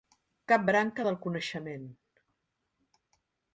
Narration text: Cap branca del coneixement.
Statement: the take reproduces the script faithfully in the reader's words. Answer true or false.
true